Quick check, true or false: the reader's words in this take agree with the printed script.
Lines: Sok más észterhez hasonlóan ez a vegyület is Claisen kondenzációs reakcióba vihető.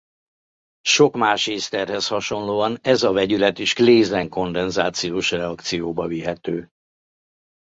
true